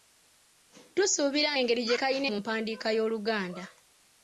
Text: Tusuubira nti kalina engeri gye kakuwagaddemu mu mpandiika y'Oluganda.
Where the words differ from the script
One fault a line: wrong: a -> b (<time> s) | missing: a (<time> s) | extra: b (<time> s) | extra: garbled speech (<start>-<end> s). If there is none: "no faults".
missing: nti kalina (1.5 s)
wrong: kakuwagaddemu -> kalina (2.0 s)